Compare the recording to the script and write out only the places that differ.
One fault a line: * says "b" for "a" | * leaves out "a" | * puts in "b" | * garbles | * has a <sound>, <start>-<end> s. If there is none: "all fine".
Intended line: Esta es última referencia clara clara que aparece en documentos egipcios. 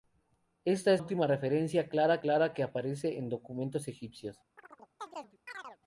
* has a chirp, 4.6-5.8 s